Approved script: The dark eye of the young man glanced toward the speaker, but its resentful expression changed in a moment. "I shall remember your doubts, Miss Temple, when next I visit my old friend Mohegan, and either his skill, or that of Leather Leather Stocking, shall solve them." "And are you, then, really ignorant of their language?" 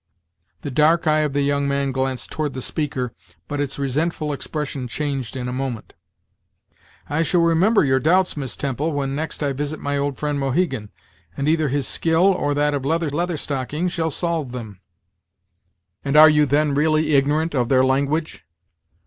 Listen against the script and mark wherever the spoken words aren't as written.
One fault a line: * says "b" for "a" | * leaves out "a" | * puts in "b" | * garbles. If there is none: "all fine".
all fine